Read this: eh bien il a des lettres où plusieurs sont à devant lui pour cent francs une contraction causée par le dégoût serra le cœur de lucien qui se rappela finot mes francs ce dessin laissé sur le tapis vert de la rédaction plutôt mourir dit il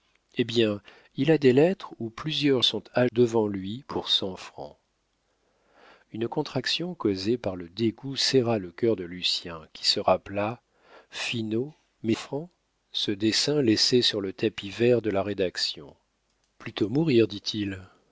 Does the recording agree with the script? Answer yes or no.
yes